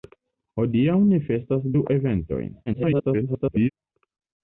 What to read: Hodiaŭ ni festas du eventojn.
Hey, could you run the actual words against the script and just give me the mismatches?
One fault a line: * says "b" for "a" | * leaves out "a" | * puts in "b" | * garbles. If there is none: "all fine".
* garbles